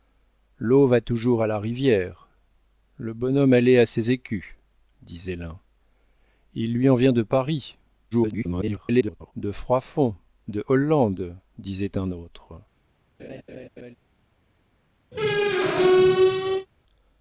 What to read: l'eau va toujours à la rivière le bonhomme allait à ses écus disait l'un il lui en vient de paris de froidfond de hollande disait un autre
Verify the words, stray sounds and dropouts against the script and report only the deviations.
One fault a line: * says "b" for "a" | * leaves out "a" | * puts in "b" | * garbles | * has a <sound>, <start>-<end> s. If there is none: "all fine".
* garbles
* has a laugh, 13.2-14.0 s
* has a squeak, 15.1-16.7 s